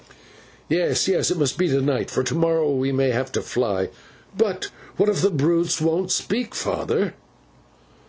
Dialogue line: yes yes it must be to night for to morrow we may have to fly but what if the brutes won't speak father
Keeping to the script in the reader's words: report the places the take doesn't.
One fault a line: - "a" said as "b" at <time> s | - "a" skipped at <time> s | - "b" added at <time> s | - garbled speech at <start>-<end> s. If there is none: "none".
none